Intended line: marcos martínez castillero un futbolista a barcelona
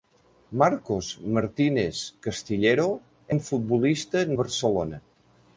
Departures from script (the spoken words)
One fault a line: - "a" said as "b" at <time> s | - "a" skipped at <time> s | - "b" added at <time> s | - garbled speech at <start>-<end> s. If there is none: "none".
none